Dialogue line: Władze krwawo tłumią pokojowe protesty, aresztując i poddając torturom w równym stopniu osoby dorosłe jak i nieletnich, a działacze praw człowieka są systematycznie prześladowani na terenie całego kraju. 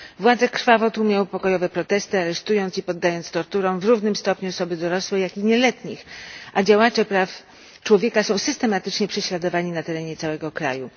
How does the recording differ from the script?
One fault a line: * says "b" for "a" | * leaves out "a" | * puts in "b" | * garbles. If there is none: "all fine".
* leaves out "w"